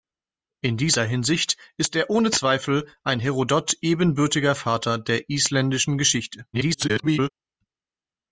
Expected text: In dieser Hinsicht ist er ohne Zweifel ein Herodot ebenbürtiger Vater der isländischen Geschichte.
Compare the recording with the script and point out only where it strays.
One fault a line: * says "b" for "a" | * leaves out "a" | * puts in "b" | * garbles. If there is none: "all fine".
* garbles